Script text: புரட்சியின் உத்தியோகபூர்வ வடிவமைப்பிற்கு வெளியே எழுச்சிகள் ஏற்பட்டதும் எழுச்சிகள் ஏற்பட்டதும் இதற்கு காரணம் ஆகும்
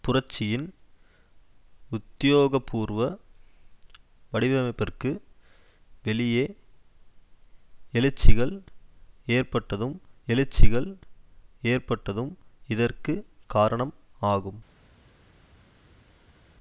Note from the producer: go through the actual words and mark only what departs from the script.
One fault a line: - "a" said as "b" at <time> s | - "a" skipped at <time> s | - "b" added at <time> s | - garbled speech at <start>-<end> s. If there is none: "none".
none